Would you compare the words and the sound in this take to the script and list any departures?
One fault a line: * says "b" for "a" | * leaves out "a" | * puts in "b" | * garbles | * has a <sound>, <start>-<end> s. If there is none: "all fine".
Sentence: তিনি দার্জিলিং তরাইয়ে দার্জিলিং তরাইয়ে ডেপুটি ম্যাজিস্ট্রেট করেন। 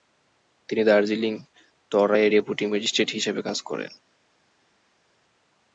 * says "ডেপুটি ম্যাজিস্ট্রেট হিসেবে কাজ" for "দার্জিলিং তরাইয়ে ডেপুটি ম্যাজিস্ট্রেট"